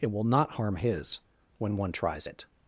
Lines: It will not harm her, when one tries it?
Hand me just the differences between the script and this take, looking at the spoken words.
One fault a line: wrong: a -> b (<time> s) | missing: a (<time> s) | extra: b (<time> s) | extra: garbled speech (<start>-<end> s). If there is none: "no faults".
wrong: her -> his (0.8 s)